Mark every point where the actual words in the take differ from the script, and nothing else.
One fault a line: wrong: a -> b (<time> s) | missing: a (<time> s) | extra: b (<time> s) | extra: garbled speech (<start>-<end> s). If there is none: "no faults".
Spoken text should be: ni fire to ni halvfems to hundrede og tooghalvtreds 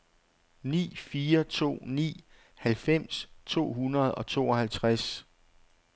no faults